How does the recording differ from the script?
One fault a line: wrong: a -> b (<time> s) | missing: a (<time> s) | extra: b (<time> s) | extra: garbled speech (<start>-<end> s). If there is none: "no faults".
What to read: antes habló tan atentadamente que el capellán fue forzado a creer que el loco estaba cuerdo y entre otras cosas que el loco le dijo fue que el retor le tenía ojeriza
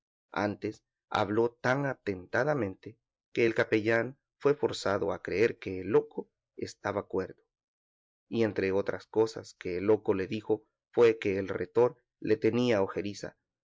no faults